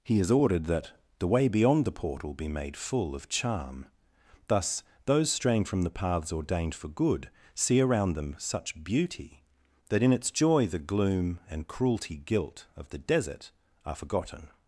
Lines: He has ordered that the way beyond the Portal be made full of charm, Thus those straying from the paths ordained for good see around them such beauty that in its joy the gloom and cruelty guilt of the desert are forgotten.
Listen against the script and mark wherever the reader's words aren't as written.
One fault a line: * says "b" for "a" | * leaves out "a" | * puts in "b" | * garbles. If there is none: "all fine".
all fine